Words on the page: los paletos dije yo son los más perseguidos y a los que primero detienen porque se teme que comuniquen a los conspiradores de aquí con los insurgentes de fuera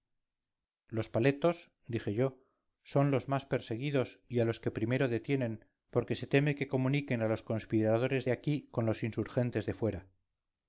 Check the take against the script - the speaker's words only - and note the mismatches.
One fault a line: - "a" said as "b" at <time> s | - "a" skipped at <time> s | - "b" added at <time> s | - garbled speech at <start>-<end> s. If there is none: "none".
none